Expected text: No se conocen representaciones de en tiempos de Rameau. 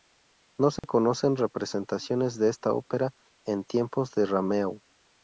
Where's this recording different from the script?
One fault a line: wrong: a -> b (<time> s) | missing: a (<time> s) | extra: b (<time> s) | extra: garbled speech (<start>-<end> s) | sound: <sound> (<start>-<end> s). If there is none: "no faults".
sound: dropout (0.8-0.8 s)
extra: esta ópera (2.5 s)